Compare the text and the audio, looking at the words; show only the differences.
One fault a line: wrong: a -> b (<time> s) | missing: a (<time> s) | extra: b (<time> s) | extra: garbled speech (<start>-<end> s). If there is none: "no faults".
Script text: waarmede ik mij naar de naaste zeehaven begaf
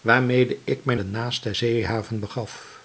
missing: naar (0.9 s)